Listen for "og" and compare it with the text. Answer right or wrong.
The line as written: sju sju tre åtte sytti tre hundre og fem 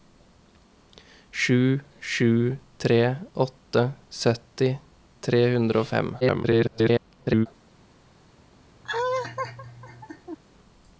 right